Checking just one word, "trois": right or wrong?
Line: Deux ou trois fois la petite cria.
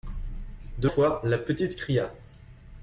wrong